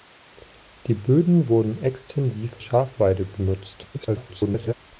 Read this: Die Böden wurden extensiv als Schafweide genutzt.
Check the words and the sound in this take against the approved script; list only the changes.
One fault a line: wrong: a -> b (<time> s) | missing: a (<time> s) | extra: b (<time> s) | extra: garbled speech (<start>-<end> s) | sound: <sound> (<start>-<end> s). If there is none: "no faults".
missing: als (2.6 s)
extra: garbled speech (3.9-4.7 s)